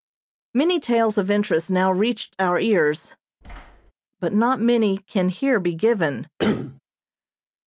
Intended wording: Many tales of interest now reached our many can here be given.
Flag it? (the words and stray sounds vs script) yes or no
yes